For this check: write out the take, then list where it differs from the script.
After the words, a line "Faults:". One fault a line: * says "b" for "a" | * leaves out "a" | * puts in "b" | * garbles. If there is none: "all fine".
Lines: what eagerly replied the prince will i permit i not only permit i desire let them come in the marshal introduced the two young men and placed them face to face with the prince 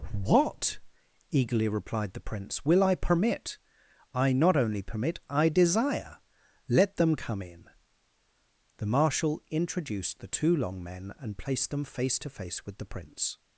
what eagerly replied the prince will i permit i not only permit i desire let them come in the marshal introduced the two long men and placed them face to face with the prince
Faults:
* says "long" for "young"